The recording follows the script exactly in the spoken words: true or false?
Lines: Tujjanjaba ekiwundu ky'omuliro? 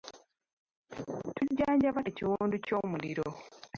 true